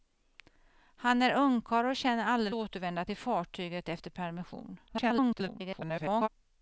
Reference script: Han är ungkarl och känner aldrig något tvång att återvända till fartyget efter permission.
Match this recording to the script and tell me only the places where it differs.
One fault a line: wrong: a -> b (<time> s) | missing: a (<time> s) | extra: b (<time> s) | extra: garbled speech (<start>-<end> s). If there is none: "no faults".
missing: något tvång att (2.5 s)
extra: garbled speech (4.9-6.3 s)